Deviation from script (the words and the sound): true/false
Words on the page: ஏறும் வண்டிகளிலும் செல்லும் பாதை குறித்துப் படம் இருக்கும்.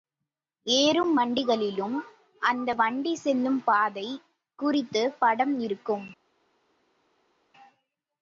true